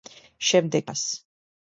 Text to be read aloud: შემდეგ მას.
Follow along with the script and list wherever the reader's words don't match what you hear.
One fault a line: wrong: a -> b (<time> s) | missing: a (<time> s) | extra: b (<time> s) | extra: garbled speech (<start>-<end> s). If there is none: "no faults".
no faults